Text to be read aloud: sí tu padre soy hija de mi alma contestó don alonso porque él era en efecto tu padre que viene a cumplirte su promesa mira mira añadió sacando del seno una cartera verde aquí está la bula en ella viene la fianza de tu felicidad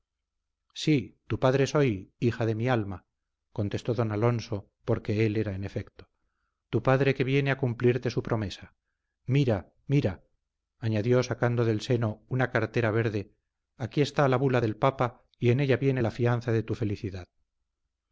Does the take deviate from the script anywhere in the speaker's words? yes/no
yes